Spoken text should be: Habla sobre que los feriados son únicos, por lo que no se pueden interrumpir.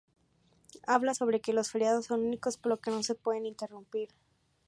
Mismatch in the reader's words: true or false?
false